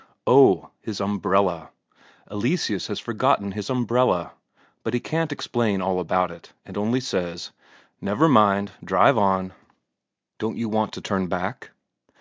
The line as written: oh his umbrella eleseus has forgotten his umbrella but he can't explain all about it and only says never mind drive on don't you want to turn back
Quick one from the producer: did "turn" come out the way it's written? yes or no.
yes